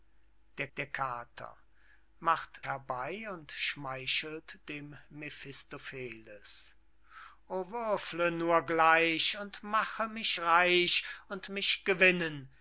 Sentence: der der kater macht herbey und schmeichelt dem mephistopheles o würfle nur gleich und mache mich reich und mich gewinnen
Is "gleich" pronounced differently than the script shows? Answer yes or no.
no